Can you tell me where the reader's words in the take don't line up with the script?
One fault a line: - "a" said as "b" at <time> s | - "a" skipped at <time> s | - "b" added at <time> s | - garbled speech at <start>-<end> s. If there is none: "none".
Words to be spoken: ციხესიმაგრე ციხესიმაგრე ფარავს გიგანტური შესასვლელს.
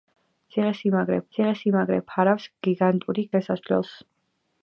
none